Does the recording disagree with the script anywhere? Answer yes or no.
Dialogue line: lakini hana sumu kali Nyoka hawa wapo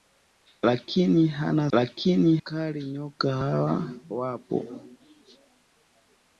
yes